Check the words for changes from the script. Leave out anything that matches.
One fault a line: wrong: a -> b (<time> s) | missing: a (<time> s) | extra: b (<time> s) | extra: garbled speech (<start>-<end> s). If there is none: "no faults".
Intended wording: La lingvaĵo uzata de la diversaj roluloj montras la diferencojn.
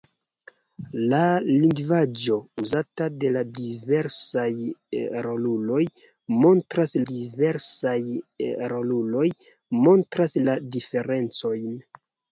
extra: diversaj roluloj montras (7.1 s)